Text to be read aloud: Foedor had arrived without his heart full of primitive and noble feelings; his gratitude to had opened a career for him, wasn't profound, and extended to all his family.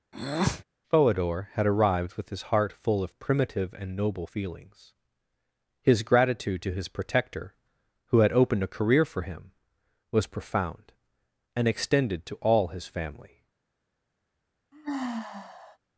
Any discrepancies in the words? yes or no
yes